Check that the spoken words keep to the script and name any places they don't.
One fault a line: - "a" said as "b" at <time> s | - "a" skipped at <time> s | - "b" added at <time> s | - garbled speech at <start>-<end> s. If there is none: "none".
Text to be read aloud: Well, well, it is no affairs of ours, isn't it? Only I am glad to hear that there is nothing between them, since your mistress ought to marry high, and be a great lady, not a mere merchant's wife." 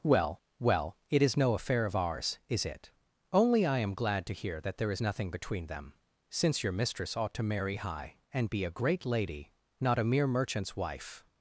- "affairs" said as "affair" at 1.5 s
- "isn't" said as "is" at 2.5 s